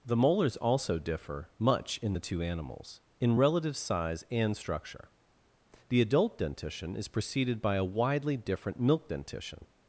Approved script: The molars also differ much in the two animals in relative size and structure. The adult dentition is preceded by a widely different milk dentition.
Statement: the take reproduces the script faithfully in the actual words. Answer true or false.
true